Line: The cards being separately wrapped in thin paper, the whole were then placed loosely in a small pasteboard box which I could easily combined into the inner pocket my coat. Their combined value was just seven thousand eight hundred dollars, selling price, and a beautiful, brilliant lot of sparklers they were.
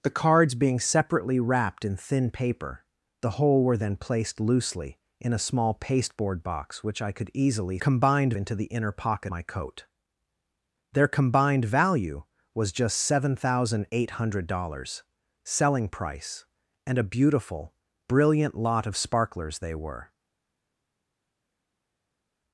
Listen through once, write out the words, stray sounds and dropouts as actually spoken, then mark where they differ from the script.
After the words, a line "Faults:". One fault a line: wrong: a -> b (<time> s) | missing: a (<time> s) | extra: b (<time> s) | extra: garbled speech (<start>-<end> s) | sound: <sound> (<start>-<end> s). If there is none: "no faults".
The cards being separately wrapped in thin paper, the whole were then placed loosely in a small pasteboard box which I could easily combined into the inner pocket my coat. Their combined value was just seven thousand eight hundred dollars, selling price, and a beautiful, brilliant lot of sparklers they were.
Faults:
no faults